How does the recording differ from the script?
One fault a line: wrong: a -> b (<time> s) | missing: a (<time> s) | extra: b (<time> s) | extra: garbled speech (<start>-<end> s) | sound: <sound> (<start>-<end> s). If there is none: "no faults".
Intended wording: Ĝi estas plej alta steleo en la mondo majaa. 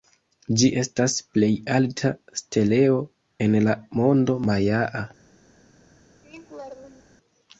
sound: laugh (6.2-7.2 s)